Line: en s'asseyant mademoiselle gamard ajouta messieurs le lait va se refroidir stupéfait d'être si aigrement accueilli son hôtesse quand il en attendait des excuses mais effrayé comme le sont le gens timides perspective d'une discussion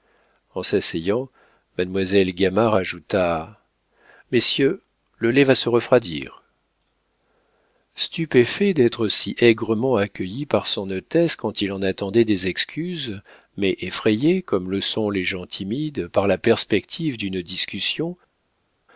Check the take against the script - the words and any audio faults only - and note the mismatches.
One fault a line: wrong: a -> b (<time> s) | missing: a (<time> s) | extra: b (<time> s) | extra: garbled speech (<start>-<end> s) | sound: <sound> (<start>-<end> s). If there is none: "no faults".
extra: par (10.4 s)
wrong: le -> les (15.1 s)
extra: par la (16.1 s)